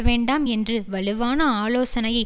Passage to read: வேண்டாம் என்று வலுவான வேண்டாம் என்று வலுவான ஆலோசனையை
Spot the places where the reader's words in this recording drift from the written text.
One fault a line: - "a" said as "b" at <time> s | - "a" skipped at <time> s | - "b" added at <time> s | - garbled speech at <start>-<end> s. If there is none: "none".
- "வேண்டாம் என்று வலுவான" skipped at 1.4 s